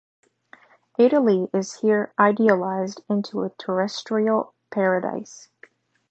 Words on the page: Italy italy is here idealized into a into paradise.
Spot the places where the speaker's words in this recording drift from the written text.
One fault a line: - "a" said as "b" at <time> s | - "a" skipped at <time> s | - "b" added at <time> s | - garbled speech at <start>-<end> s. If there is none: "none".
- "italy" skipped at 1.5 s
- "into" said as "terrestrial" at 3.5 s